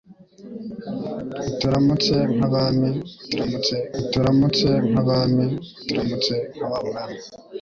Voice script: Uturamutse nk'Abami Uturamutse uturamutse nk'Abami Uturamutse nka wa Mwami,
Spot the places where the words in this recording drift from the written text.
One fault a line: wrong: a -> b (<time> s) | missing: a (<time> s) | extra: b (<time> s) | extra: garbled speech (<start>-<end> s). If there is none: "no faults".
no faults